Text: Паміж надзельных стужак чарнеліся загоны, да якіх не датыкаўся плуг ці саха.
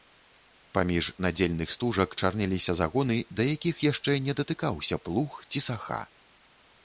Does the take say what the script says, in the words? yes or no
no